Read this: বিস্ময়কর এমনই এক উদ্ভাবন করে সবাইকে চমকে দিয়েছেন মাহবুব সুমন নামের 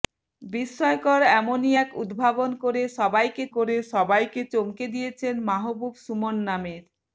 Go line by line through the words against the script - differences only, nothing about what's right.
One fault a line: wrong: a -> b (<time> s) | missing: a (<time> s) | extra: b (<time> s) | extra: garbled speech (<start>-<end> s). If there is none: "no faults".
extra: করে সবাইকে (3.5 s)